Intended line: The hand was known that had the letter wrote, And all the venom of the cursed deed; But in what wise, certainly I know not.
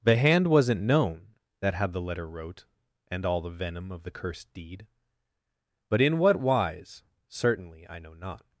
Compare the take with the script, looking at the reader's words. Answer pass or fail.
fail